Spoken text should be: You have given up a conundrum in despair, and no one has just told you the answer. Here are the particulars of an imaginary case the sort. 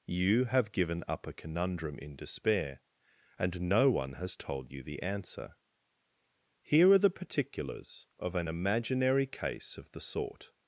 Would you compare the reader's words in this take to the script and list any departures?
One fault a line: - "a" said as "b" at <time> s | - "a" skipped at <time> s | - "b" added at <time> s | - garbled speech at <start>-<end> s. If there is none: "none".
- "just" skipped at 4.3 s
- "of" added at 9.8 s